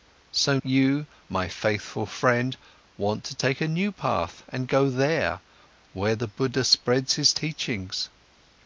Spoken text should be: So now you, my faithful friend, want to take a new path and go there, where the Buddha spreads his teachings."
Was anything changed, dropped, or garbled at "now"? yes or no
yes